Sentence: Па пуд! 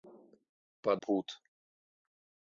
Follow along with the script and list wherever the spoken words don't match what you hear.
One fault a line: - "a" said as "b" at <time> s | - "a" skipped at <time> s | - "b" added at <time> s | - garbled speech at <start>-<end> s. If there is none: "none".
none